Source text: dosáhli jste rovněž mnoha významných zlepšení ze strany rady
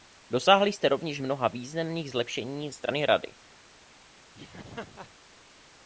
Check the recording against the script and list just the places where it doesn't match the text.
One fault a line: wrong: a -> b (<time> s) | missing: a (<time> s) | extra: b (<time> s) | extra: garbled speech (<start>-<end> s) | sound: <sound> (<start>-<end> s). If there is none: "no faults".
missing: ze (2.7 s)
sound: laugh (4.3-5.1 s)